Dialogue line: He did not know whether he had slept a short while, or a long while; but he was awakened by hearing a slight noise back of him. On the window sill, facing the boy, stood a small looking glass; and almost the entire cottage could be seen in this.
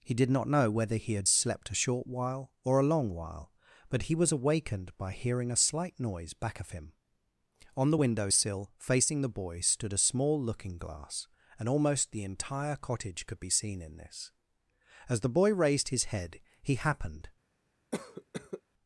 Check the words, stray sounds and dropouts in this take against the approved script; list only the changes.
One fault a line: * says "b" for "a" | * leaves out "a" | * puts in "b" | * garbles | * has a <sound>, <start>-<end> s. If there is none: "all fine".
* puts in "As the boy raised his head he happened"
* has a cough, 17.9-18.6 s